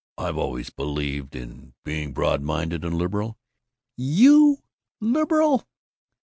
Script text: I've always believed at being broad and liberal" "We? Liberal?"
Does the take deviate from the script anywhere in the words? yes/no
yes